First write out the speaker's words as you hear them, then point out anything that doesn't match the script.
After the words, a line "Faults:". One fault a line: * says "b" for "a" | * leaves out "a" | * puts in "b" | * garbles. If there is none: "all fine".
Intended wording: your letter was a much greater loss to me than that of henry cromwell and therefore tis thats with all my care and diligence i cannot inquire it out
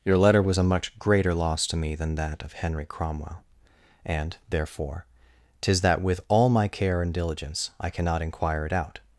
your letter was a much greater loss to me than that of henry cromwell and therefore tis that with all my care and diligence i cannot inquire it out
Faults:
* says "that" for "thats"